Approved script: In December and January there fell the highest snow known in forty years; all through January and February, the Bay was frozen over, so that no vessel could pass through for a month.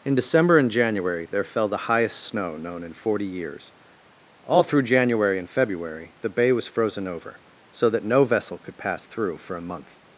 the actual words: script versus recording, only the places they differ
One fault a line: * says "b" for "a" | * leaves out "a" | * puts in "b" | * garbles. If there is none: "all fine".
all fine